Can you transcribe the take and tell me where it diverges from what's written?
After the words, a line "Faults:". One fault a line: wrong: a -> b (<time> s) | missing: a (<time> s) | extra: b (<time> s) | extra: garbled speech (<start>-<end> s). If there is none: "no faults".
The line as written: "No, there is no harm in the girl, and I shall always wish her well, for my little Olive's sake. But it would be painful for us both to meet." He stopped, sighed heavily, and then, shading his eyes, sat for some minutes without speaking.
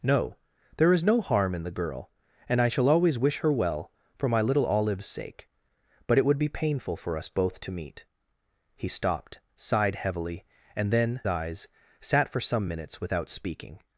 "No, there is no harm in the girl, and I shall always wish her well, for my little Olive's sake. But it would be painful for us both to meet." He stopped, sighed heavily, and then, eyes, sat for some minutes without speaking.
Faults:
missing: shading his (11.2 s)